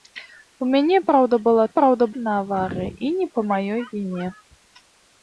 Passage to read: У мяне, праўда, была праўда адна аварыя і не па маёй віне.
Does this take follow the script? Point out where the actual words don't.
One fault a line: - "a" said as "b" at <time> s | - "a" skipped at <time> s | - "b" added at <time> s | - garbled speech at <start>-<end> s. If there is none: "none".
none